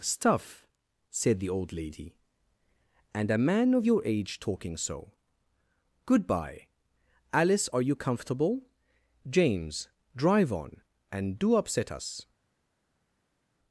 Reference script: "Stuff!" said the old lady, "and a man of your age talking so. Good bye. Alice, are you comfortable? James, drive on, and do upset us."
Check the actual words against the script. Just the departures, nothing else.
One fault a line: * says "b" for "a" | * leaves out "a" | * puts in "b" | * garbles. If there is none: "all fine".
all fine